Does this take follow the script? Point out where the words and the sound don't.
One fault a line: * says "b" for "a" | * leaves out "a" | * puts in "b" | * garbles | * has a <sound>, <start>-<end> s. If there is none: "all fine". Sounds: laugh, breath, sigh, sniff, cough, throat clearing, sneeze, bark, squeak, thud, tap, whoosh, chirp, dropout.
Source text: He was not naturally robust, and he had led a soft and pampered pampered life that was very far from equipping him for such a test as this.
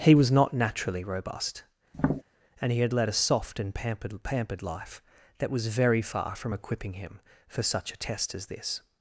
* has a tap, 1.9-2.2 s